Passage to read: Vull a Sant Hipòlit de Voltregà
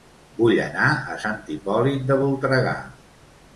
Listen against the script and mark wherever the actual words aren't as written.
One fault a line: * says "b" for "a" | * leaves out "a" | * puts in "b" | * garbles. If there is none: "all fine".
* puts in "anar"